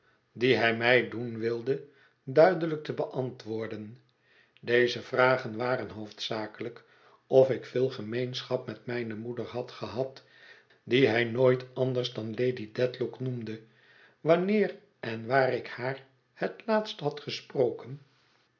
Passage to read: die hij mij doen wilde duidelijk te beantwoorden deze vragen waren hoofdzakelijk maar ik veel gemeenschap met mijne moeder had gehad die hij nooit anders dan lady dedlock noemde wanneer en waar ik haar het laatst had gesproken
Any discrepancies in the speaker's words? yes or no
yes